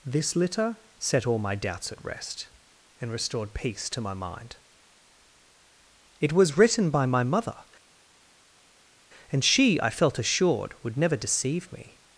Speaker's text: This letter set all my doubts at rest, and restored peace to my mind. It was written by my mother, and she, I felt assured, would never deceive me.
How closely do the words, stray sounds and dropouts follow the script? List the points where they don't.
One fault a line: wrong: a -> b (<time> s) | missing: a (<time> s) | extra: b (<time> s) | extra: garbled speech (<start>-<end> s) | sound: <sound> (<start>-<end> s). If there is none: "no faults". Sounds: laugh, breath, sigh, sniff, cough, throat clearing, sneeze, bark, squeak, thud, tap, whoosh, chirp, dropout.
wrong: letter -> litter (0.3 s)